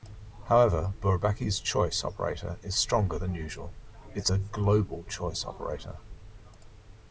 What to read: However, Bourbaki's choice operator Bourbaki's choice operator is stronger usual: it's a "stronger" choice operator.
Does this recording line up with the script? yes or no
no